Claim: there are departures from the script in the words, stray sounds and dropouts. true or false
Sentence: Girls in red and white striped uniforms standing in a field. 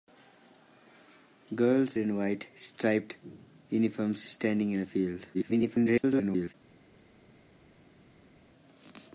true